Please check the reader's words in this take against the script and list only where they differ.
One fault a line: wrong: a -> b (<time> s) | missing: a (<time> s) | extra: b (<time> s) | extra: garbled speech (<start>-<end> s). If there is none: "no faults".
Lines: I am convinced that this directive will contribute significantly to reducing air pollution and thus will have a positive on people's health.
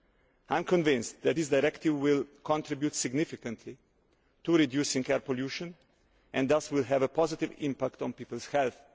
extra: impact (7.6 s)